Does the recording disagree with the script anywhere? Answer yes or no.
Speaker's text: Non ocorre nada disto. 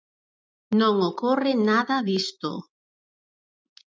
no